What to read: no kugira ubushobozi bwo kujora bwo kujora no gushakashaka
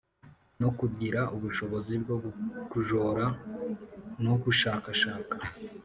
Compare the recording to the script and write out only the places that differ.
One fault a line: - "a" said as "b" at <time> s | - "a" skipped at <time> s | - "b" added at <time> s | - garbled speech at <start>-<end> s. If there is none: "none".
- "bwo kujora" skipped at 3.2 s